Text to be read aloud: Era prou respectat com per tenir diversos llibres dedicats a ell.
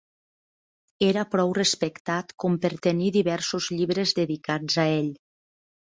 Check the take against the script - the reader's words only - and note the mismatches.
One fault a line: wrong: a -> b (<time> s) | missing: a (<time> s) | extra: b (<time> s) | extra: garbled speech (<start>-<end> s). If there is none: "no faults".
no faults